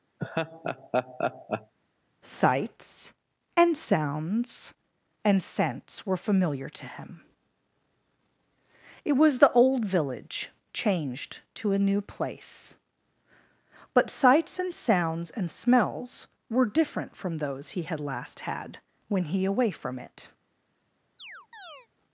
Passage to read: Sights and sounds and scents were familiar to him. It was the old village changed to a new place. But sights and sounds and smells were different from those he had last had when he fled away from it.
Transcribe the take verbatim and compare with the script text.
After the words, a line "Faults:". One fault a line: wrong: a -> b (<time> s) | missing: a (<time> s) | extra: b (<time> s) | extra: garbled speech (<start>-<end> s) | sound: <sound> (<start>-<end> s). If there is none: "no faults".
Sights and sounds and scents were familiar to him. It was the old village changed to a new place. But sights and sounds and smells were different from those he had last had when he away from it.
Faults:
sound: laugh (0.2-1.7 s)
missing: fled (19.4 s)
sound: chirp (21.2-21.9 s)